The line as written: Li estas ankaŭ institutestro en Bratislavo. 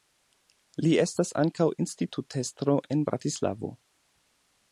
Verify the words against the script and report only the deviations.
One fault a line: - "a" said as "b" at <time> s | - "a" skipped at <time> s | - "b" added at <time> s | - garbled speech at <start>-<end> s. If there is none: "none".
none